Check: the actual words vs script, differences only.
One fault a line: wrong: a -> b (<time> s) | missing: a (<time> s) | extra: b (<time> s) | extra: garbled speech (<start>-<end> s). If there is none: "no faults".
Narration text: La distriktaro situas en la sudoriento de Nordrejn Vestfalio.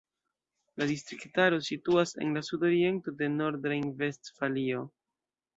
no faults